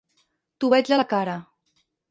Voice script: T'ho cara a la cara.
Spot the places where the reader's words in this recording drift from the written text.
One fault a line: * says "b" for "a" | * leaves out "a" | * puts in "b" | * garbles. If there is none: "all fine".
* says "veig" for "cara"